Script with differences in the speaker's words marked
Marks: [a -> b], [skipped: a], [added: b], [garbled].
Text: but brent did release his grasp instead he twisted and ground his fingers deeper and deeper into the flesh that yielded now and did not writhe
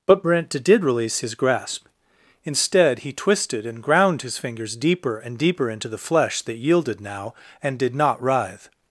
but brent did release his grasp instead he twisted and ground his fingers deeper and deeper into the flesh that yielded now and did not writhe